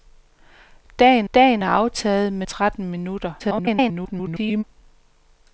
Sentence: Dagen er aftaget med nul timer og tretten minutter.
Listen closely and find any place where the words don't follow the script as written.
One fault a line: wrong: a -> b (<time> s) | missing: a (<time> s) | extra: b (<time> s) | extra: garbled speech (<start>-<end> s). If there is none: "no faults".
extra: dagen (1.3 s)
missing: nul timer og (2.5 s)
extra: garbled speech (3.4-4.6 s)